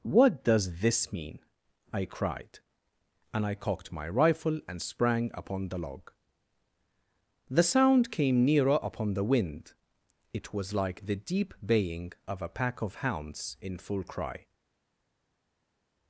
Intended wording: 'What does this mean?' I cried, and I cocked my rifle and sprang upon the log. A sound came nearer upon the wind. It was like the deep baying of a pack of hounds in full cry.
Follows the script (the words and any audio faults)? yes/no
no